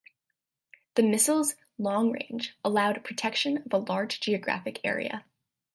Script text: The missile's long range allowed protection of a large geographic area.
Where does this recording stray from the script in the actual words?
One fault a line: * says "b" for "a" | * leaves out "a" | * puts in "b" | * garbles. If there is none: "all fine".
all fine